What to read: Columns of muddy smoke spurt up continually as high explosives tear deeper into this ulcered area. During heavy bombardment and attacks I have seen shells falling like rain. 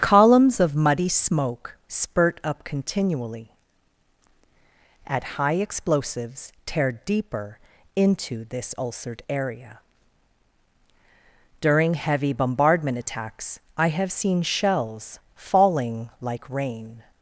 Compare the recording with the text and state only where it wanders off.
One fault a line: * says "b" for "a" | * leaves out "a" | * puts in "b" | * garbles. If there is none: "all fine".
* says "at" for "as"
* leaves out "and"